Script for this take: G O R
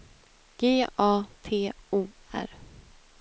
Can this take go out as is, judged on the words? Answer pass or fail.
fail